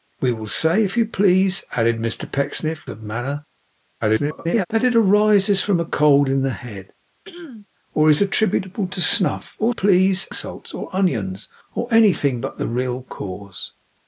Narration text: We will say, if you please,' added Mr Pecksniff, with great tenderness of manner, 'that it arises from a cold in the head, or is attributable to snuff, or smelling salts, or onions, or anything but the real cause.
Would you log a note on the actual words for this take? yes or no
yes